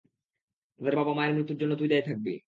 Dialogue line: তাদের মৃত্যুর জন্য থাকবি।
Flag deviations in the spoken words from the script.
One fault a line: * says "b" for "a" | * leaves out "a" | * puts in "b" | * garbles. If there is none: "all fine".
* puts in "বাবা-মায়ের"
* puts in "তুই দায়ী"